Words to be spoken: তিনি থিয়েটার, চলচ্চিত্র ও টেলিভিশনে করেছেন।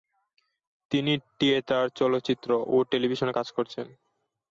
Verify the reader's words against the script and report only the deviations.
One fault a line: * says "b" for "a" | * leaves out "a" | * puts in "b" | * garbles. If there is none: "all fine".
* puts in "কাজ"